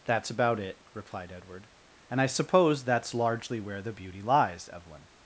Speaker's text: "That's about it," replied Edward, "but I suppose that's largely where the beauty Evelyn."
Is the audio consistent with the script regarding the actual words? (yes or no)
no